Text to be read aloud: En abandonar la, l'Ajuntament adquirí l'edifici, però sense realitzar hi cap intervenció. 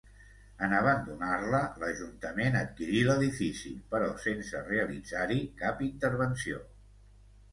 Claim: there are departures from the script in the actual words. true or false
false